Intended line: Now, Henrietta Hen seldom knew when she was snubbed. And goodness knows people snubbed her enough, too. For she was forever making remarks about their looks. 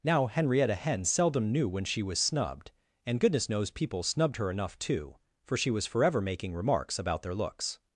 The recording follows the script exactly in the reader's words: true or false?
true